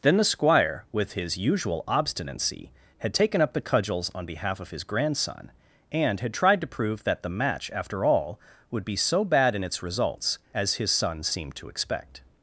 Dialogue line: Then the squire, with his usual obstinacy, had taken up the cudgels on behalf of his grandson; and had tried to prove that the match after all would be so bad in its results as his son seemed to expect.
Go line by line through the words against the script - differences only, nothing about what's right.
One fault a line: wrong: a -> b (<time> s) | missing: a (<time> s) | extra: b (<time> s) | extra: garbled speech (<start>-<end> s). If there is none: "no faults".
no faults